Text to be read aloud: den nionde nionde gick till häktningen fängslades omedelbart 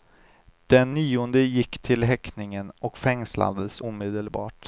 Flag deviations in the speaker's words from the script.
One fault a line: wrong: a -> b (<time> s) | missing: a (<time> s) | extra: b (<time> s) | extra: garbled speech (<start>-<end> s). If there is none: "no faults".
missing: nionde (1.4 s)
extra: och (2.8 s)